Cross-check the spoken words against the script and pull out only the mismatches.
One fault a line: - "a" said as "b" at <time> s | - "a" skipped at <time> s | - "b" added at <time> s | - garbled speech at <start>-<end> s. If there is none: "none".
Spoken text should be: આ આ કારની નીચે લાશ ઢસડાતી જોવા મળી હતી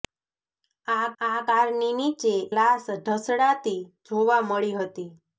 none